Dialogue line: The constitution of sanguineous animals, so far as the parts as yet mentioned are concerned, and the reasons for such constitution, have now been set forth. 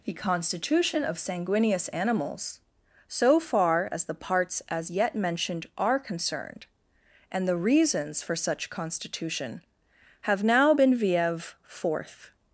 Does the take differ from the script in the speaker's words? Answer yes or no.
yes